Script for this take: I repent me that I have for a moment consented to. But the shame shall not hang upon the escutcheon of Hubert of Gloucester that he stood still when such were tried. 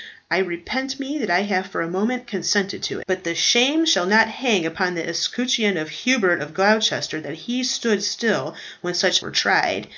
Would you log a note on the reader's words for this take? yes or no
no